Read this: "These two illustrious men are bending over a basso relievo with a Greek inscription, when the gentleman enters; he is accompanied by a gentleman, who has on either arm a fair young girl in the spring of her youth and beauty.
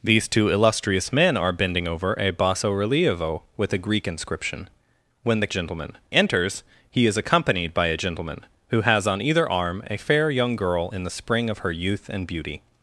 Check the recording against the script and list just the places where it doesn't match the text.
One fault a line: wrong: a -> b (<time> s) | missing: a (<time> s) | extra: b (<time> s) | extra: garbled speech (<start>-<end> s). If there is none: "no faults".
no faults